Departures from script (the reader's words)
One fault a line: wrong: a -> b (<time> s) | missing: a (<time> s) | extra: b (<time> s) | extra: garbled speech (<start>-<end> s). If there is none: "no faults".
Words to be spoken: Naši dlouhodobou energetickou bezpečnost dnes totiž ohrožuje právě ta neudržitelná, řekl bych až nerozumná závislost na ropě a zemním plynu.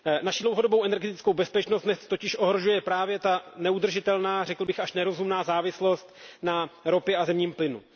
no faults